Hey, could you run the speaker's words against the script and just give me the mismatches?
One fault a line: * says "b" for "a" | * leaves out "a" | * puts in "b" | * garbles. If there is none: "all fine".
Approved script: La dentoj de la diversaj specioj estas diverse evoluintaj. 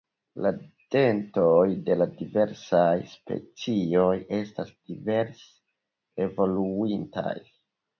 all fine